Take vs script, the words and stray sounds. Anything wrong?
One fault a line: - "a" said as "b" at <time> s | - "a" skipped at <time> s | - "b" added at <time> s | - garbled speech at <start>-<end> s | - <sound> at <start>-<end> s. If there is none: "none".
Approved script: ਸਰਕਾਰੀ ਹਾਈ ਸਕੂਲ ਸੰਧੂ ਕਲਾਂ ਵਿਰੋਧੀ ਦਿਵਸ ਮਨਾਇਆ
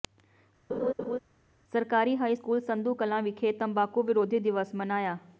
- laugh at 0.7-1.2 s
- "ਵਿਖੇ ਤੰਬਾਕੂ" added at 3.2 s